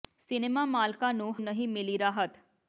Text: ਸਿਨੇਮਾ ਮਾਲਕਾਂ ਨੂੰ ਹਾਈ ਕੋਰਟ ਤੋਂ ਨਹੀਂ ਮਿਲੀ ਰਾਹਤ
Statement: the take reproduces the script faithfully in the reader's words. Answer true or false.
false